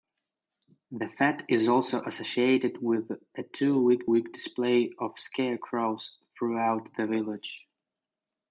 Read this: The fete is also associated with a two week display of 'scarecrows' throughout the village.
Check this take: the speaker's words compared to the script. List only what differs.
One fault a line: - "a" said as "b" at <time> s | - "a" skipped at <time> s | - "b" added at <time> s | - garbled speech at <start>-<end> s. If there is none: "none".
- "week" added at 4.1 s